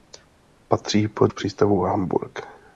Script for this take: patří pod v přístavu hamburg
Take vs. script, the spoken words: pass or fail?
pass